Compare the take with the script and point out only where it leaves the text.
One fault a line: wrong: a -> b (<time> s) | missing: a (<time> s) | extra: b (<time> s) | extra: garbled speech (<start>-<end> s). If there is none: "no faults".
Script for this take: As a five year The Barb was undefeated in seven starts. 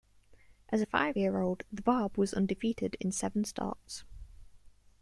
extra: old (1.4 s)